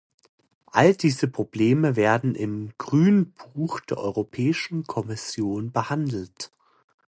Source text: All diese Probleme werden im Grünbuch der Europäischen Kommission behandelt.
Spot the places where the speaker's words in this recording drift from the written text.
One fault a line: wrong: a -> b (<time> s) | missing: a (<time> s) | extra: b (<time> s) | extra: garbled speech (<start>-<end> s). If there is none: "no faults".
no faults